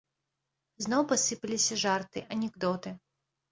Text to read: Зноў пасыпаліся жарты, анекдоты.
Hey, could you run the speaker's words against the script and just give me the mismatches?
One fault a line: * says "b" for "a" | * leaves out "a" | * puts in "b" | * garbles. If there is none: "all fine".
all fine